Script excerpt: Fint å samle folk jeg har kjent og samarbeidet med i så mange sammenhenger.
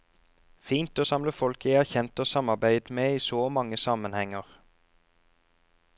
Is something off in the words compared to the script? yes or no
no